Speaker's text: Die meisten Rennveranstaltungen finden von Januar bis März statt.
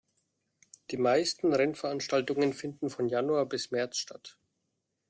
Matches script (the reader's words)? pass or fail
pass